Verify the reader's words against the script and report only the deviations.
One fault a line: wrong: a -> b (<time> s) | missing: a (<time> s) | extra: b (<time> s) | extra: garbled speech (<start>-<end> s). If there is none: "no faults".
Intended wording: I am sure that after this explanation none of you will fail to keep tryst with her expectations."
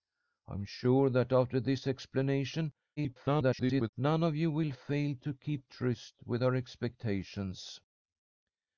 extra: garbled speech (3.0-3.9 s)